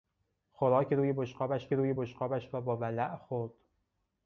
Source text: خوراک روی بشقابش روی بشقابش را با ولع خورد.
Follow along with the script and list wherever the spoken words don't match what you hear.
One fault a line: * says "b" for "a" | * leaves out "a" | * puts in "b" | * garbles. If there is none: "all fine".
all fine